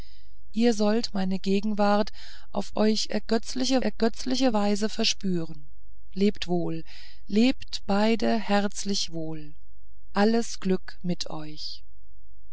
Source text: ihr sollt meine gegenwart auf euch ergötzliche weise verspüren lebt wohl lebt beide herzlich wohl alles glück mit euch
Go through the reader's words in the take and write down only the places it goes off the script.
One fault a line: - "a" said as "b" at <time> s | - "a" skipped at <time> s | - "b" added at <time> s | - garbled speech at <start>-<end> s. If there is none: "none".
- "ergötzliche" added at 3.8 s